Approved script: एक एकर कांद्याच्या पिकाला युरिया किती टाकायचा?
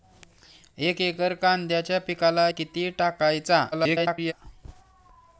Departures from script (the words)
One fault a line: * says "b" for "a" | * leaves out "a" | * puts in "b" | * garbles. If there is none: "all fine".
* leaves out "युरिया"
* garbles